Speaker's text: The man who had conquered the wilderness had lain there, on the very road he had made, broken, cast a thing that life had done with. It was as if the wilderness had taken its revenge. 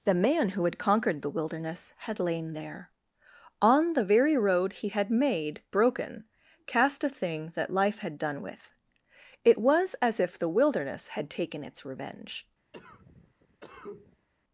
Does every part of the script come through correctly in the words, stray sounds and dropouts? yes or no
no